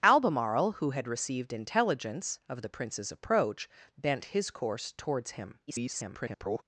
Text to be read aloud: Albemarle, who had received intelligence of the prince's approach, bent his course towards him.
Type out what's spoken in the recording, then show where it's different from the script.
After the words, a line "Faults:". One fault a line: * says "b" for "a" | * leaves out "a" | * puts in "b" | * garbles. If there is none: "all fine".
Albemarle, who had received intelligence of the prince's approach, bent his course towards him. [garbled]
Faults:
* garbles